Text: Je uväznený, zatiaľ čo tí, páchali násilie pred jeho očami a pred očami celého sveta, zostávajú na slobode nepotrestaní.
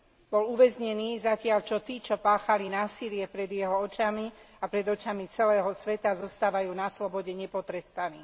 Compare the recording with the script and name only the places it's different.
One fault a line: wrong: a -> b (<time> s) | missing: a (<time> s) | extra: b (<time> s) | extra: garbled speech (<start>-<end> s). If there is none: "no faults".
wrong: Je -> Bol (0.3 s)
extra: čo (2.0 s)